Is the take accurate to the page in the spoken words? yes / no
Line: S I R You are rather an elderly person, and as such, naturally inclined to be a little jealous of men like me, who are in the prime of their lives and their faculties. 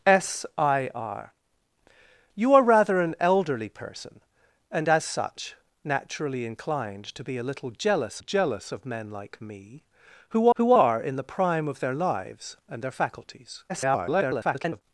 no